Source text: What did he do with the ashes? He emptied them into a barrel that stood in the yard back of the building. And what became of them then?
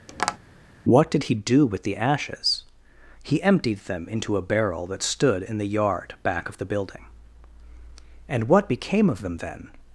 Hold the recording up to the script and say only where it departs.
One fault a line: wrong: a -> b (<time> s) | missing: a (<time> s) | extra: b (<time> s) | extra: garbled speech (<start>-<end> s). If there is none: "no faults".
no faults